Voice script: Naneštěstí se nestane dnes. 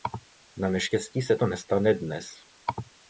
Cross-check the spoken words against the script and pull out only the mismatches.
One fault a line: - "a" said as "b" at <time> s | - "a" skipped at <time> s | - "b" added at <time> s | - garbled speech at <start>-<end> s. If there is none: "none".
- "to" added at 1.3 s